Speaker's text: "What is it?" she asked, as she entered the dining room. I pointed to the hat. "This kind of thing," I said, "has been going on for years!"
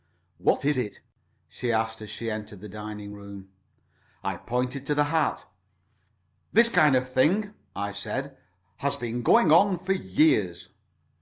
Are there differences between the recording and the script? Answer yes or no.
no